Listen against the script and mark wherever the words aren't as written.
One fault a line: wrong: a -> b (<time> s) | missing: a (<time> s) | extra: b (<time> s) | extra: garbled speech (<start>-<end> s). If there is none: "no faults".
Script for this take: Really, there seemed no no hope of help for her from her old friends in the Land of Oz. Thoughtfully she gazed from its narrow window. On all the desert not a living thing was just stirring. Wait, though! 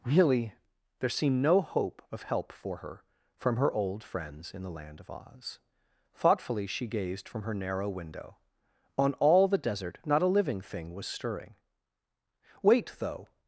missing: no (1.6 s)
wrong: its -> her (7.4 s)
missing: just (11.1 s)